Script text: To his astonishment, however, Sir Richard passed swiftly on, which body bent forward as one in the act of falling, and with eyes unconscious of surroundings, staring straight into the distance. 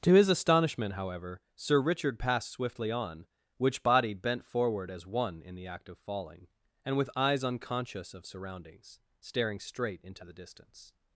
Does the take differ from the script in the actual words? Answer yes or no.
no